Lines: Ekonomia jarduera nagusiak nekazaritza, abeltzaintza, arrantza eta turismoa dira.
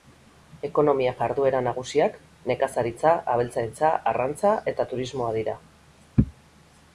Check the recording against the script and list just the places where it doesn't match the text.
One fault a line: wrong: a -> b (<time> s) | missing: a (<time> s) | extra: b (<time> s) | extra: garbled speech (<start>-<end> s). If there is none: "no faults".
no faults